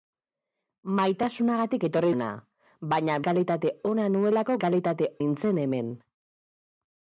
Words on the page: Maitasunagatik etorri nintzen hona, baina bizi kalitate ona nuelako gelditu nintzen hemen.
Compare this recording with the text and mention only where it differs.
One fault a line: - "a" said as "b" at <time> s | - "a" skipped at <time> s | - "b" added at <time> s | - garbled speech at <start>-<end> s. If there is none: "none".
- "nintzen" skipped at 2.1 s
- "bizi" skipped at 3.2 s
- "gelditu" said as "kalitate" at 4.7 s